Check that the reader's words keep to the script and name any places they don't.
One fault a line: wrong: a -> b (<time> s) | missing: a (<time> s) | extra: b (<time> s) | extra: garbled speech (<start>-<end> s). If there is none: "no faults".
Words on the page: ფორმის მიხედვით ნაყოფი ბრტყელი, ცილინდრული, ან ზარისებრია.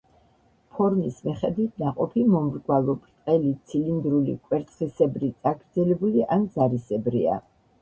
extra: მომრგვალო (2.4 s)
extra: კვერცხისებრი წაგრძელებული (4.5 s)